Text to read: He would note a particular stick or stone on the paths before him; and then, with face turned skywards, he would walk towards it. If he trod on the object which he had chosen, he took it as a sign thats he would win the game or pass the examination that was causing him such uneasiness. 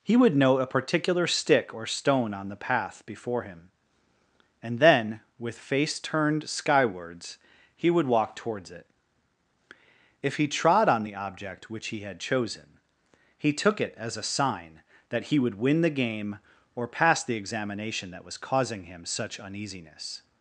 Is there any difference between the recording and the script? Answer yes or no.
yes